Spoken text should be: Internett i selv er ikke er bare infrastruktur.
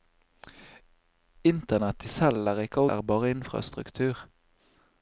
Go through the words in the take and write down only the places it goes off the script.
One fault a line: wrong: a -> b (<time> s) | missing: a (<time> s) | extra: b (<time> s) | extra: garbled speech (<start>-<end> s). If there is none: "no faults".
no faults